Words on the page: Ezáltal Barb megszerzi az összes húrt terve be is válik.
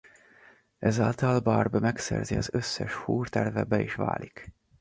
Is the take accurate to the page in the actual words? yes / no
yes